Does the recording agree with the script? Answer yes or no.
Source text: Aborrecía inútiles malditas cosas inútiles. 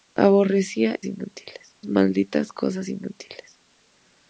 yes